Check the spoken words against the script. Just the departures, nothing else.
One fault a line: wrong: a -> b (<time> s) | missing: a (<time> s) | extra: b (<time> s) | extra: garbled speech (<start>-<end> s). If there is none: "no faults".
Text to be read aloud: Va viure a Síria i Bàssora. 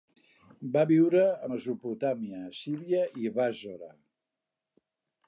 extra: Mesopotàmia (1.5 s)